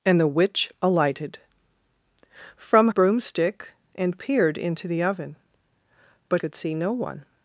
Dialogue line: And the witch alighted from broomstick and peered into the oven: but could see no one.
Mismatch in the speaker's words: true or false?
false